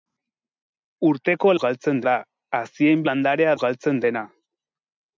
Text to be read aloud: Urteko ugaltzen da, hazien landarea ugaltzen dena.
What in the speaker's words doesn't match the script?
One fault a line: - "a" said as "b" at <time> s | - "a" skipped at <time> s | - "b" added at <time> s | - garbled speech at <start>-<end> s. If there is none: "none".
none